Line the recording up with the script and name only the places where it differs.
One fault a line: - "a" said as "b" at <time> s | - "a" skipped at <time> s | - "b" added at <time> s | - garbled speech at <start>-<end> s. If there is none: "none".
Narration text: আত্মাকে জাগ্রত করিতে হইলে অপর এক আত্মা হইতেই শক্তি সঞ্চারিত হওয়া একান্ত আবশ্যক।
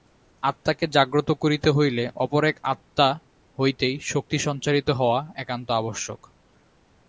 none